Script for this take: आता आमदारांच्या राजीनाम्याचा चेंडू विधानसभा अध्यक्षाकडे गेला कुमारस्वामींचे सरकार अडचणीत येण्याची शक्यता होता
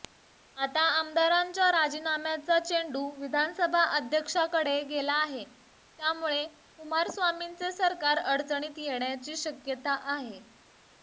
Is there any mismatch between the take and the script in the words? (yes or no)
yes